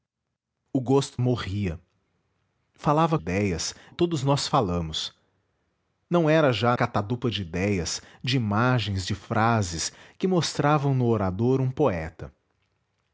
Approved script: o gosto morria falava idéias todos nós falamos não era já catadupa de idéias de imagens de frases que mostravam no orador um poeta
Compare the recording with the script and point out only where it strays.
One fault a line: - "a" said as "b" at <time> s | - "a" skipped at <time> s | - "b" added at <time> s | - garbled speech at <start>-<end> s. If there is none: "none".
none